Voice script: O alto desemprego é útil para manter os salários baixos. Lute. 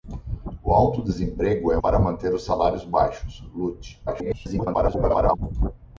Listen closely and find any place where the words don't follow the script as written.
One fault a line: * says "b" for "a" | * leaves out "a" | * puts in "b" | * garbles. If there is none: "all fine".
* leaves out "útil"
* garbles